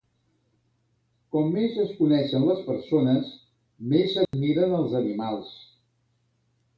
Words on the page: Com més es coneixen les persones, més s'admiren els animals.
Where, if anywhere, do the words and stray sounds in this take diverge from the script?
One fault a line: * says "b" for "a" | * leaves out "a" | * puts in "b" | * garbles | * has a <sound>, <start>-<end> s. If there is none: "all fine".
* has a dropout, 4.3-4.3 s